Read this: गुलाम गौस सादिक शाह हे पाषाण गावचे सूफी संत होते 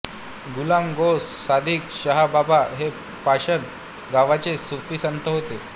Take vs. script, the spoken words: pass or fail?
fail